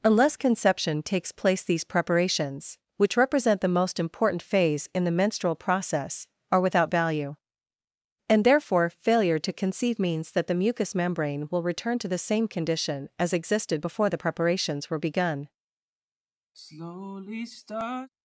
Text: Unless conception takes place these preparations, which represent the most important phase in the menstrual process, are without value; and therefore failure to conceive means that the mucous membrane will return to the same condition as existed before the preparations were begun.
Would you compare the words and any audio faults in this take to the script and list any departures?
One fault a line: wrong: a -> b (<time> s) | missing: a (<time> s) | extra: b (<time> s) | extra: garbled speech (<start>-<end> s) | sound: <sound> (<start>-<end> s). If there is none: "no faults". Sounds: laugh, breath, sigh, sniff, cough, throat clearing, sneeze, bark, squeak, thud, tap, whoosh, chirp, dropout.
sound: sigh (16.5-18.1 s)